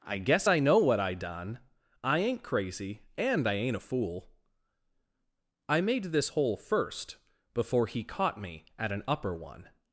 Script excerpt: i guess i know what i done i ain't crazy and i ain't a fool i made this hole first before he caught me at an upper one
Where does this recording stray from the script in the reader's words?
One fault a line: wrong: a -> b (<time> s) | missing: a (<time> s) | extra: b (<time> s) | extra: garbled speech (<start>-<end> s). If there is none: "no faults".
no faults